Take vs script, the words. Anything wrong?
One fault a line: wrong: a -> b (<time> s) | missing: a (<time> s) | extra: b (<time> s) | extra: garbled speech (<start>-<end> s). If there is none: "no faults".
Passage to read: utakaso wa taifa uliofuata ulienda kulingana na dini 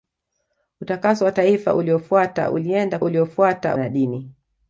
wrong: kulingana -> uliofuata (3.0 s)